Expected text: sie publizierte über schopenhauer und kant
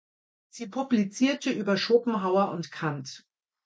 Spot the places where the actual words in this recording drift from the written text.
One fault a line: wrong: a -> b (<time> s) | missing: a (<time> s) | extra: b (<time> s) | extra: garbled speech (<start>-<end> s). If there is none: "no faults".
no faults